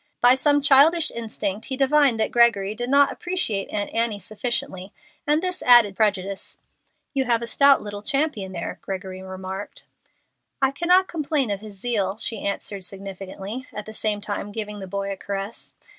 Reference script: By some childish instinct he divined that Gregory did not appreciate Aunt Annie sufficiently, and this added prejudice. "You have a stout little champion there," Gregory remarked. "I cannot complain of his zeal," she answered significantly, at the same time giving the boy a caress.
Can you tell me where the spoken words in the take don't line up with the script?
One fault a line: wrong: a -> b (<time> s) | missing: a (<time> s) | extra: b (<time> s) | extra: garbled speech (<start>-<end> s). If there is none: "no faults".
no faults